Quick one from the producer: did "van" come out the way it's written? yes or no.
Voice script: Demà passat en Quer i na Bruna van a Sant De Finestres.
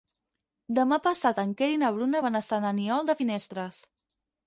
yes